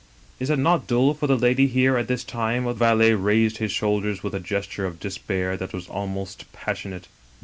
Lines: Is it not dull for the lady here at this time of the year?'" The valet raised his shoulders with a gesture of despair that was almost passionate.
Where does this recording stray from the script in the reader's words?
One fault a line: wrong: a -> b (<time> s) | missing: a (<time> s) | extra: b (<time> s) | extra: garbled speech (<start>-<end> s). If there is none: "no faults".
missing: the year The (2.8 s)